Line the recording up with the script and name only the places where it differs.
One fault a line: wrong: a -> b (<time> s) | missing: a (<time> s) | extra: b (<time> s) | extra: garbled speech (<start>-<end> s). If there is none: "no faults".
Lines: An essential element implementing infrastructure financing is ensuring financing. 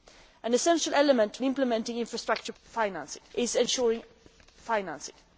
no faults